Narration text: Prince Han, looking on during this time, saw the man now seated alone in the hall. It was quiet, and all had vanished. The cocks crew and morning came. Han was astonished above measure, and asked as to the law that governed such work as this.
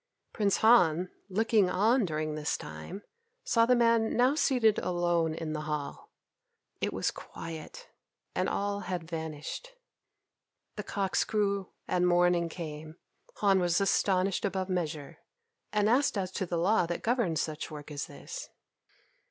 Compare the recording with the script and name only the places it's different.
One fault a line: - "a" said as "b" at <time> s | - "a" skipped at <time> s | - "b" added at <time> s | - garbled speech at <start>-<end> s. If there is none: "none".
none